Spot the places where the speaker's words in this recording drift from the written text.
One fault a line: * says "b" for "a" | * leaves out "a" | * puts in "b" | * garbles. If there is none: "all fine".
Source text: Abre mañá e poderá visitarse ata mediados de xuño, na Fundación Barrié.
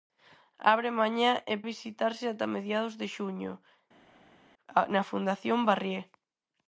* leaves out "poderá"